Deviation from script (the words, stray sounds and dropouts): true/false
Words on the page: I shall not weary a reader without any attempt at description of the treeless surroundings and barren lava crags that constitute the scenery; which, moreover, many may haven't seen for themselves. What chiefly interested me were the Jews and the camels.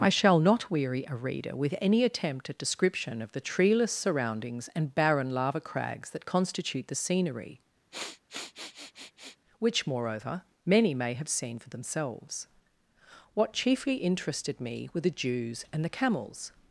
true